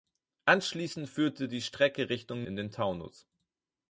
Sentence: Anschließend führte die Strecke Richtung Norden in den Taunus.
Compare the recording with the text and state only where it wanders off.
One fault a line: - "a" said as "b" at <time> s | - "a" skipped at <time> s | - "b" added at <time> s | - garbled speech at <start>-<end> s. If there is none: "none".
- "Norden" skipped at 2.5 s